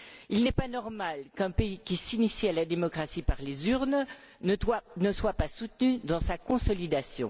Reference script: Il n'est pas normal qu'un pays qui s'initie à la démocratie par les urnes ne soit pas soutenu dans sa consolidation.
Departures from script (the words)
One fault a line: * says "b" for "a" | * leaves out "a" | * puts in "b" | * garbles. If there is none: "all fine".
all fine